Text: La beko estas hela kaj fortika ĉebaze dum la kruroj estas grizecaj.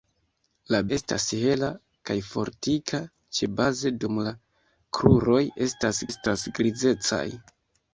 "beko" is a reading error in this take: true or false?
true